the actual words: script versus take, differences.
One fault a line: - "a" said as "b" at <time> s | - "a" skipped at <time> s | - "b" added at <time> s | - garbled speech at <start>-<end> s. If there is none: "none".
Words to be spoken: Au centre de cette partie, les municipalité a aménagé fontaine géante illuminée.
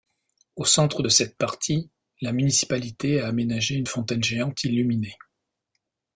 - "les" said as "la" at 2.2 s
- "une" added at 3.7 s